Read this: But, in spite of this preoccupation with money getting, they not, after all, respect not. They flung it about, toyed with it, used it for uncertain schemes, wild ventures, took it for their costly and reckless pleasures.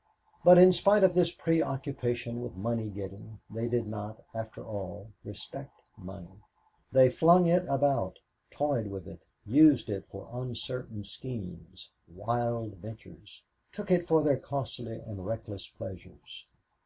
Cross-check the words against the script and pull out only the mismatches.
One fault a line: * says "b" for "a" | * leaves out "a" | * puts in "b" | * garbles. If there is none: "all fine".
* puts in "did"
* says "money" for "not"